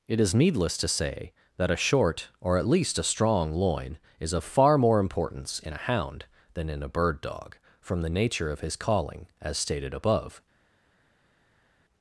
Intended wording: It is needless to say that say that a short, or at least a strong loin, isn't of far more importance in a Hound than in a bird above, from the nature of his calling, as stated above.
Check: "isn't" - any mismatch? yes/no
yes